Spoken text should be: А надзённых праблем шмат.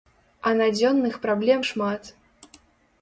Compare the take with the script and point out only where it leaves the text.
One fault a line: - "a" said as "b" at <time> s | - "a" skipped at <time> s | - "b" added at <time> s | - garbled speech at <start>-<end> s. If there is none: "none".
none